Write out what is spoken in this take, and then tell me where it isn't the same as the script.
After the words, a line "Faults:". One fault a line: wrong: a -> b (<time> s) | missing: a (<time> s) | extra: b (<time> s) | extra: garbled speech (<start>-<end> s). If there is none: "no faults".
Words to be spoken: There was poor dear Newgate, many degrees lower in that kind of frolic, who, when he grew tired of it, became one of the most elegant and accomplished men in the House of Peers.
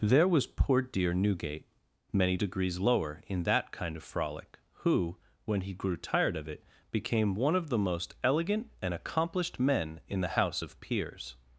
There was poor dear Newgate, many degrees lower in that kind of frolic, who, when he grew tired of it, became one of the most elegant and accomplished men in the House of Peers.
Faults:
no faults